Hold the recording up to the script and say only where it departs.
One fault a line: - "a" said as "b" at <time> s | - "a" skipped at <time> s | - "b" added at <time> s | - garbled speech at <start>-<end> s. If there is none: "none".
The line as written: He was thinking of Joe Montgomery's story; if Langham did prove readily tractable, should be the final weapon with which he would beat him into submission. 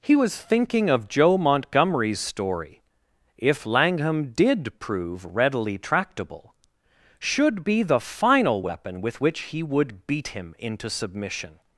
none